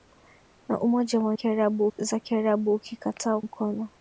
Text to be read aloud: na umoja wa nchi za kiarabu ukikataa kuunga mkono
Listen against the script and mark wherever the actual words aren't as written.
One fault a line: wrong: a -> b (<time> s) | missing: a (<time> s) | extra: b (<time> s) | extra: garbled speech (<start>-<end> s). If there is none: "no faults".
wrong: nchi -> kiarabu (1.3 s)
missing: kuunga (3.4 s)